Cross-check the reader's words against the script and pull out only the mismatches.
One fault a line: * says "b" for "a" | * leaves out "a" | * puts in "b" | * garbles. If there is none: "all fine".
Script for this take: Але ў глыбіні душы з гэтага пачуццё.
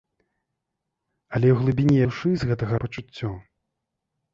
all fine